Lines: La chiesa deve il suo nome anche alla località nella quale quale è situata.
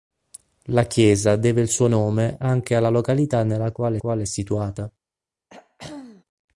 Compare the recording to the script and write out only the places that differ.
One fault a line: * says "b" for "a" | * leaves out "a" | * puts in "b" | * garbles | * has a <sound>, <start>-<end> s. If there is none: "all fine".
* has a throat clearing, 5.5-6.2 s